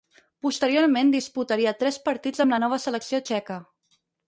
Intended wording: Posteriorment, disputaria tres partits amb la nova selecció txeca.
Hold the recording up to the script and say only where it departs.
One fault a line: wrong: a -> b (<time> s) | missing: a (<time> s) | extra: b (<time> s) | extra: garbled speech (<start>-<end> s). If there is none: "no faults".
no faults